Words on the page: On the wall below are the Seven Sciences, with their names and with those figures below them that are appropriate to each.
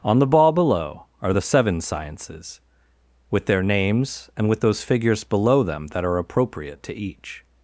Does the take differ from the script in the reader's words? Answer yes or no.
yes